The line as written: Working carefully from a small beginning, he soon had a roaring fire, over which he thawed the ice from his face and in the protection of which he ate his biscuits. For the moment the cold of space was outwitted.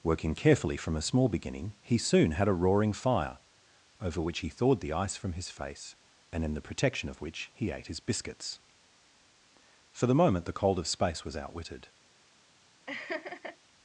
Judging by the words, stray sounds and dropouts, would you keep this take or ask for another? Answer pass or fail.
fail